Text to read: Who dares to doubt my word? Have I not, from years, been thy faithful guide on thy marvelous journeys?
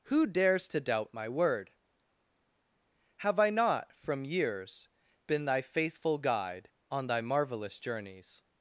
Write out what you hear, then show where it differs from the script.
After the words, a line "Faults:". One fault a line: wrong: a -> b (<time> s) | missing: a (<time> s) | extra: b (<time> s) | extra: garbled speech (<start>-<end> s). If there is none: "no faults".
Who dares to doubt my word? Have I not, from years, been thy faithful guide on thy marvelous journeys?
Faults:
no faults